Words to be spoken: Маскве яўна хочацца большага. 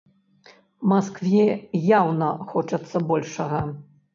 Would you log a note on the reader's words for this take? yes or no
no